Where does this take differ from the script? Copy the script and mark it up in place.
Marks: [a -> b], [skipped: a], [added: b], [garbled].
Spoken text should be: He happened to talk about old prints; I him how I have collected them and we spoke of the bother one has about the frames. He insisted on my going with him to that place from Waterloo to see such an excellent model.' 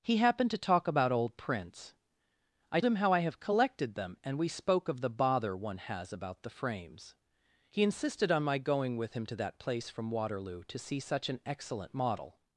He happened to talk about old prints; I him how I have collected them and we spoke of the bother one has about the frames. He insisted on my going with him to that place from Waterloo to see such an excellent model.'